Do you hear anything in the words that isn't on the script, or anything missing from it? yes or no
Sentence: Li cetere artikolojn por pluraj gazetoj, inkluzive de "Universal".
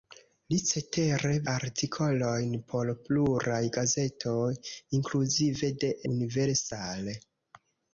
no